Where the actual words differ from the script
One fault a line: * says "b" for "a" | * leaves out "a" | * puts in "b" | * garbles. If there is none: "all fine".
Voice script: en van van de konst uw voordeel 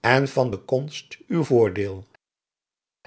* leaves out "van"